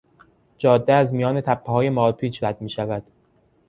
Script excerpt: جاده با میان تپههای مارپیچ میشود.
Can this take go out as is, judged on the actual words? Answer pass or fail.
fail